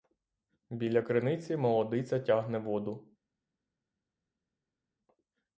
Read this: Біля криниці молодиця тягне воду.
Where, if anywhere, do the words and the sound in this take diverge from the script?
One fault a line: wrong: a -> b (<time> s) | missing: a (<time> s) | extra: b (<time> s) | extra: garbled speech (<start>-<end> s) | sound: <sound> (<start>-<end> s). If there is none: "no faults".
no faults